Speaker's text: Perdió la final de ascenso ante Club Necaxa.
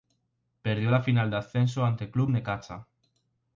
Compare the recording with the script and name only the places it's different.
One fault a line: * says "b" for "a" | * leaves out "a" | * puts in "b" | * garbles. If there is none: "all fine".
all fine